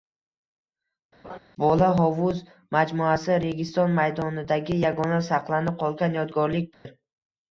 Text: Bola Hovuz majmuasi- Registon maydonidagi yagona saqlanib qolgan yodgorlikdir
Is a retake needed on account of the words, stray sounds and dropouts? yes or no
yes